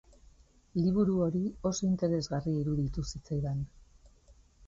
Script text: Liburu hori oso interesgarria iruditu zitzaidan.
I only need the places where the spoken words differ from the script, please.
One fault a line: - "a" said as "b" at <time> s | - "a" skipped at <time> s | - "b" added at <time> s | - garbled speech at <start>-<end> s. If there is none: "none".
none